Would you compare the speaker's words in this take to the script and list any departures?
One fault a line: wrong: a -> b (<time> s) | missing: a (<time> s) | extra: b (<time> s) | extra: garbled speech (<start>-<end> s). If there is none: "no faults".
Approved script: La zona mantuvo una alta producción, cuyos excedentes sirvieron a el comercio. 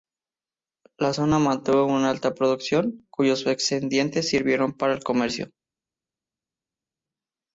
wrong: a -> para (4.8 s)